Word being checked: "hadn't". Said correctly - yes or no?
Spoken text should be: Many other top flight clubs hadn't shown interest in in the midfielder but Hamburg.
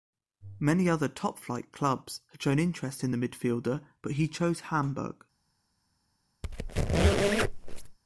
no